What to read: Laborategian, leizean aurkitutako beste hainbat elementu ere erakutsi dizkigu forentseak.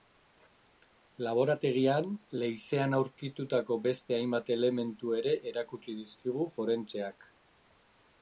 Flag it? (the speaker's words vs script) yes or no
no